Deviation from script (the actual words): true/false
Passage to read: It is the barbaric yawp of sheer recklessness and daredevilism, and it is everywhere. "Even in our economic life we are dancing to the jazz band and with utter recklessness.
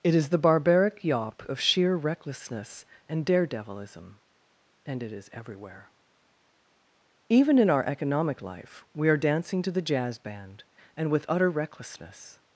false